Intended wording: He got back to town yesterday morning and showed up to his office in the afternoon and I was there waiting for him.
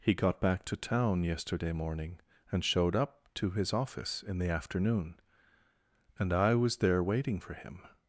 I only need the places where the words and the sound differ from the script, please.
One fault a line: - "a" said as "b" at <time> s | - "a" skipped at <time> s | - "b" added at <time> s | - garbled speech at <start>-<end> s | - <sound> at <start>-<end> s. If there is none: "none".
none